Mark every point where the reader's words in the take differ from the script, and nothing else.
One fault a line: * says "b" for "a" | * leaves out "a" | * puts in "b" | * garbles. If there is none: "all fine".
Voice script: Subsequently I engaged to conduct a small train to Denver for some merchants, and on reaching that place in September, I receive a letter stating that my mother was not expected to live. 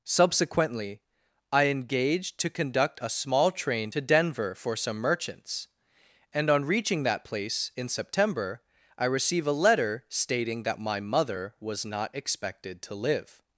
all fine